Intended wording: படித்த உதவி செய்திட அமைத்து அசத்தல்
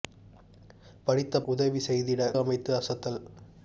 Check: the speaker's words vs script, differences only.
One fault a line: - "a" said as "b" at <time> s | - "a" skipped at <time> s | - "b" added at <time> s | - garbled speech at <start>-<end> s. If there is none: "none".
none